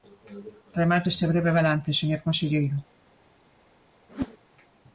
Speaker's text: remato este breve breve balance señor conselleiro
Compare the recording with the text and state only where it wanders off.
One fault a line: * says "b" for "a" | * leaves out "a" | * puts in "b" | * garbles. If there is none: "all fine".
* leaves out "breve"